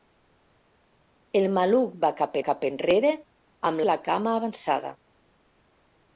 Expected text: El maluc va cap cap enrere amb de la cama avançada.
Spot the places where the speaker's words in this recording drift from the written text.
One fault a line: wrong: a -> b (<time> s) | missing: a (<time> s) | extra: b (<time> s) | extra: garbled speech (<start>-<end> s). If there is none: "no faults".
no faults